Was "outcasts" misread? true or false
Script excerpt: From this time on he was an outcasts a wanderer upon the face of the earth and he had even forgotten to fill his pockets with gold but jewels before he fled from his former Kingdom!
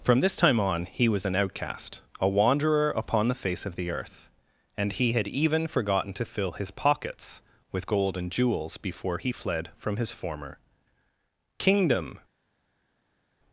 true